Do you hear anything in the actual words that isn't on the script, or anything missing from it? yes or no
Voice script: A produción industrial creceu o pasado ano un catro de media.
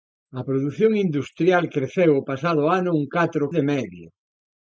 no